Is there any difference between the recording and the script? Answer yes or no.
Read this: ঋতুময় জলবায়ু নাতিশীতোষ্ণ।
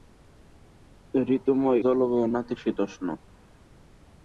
no